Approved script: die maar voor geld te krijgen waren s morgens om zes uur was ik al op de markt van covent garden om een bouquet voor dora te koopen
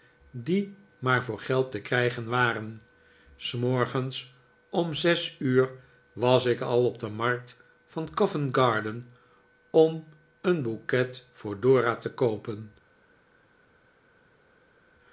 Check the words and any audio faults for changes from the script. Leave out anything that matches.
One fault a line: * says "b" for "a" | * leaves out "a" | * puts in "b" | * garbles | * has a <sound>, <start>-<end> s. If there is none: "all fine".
all fine